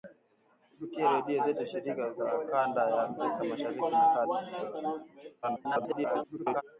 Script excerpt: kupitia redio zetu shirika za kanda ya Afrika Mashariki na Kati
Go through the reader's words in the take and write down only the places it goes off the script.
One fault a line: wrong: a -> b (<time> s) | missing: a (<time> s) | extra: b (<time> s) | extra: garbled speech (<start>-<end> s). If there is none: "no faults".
extra: garbled speech (5.4-6.6 s)